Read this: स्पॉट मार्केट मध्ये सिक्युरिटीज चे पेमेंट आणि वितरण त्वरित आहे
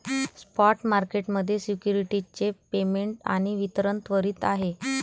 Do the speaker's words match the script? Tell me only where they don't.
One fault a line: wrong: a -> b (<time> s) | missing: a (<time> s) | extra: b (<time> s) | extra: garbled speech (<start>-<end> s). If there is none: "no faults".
no faults